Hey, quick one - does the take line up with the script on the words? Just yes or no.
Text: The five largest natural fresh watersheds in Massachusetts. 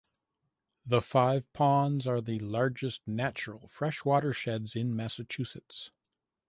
no